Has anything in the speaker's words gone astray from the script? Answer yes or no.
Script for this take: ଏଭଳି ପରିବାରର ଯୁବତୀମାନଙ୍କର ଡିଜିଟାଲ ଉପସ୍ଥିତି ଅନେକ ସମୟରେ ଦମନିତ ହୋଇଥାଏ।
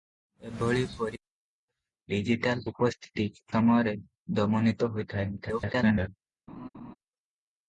yes